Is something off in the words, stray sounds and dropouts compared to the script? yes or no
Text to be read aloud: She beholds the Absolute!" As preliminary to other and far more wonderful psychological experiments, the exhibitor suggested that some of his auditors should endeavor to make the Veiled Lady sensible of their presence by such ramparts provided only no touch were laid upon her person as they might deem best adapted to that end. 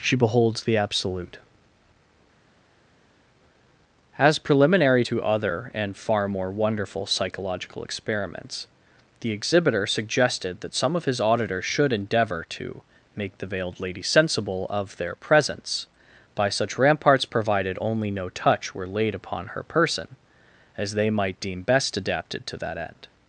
no